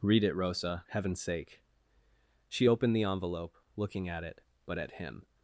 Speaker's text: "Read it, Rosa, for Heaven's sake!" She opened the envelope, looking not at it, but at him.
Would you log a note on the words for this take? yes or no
yes